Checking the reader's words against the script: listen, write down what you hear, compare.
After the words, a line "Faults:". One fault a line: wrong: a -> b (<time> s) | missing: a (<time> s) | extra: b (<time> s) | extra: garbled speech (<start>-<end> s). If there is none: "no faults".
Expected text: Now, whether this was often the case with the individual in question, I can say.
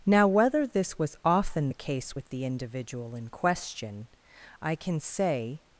Now, whether this was often the case with the individual in question, I can say.
Faults:
no faults